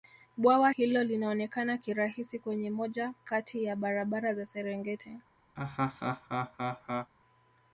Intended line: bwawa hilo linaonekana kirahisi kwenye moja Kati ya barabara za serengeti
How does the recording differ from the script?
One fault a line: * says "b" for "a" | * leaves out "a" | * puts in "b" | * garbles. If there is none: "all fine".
all fine